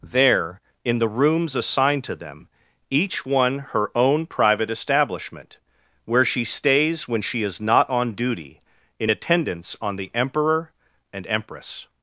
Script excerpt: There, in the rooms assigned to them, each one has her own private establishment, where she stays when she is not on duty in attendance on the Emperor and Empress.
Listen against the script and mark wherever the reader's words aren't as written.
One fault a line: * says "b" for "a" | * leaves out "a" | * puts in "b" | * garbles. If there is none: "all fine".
* leaves out "has"